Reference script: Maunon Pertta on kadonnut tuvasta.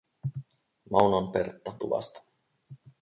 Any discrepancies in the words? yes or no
yes